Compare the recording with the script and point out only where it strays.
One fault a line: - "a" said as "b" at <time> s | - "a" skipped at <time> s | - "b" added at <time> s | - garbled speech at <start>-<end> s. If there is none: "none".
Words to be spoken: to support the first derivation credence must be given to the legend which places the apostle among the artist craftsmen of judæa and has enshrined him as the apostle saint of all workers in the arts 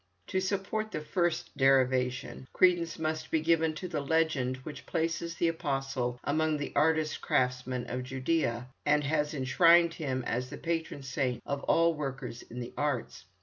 - "apostle" said as "patron" at 10.6 s